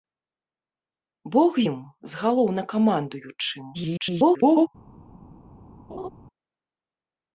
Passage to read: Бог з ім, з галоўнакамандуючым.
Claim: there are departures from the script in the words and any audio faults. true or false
true